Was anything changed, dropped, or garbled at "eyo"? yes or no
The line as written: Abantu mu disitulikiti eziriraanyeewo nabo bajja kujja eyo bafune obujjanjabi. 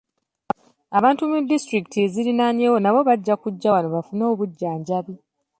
yes